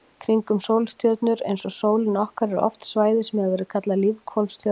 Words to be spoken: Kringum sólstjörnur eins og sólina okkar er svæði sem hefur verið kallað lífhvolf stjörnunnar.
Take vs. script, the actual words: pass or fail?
fail